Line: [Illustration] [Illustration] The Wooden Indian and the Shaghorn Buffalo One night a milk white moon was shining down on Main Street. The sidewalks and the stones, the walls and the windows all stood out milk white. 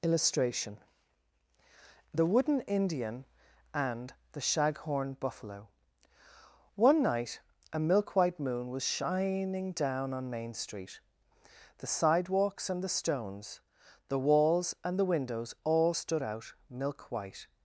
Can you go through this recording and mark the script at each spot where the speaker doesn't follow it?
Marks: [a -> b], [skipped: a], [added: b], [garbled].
[Illustration] [skipped: [Illustration]] The Wooden Indian and the Shaghorn Buffalo One night a milk white moon was shining down on Main Street. The sidewalks and the stones, the walls and the windows all stood out milk white.